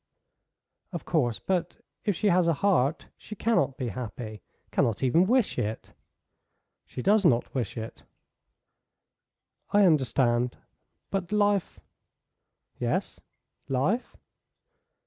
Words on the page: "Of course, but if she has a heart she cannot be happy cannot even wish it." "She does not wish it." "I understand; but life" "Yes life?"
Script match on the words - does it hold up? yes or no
yes